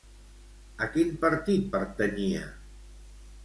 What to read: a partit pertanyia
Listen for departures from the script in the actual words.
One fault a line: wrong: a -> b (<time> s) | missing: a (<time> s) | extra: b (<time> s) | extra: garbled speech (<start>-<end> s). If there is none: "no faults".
extra: quin (0.9 s)